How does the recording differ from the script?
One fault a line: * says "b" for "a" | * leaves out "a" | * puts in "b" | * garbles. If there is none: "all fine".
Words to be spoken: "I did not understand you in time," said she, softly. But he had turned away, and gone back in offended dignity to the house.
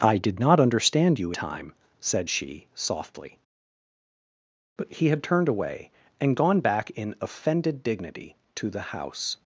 * leaves out "in"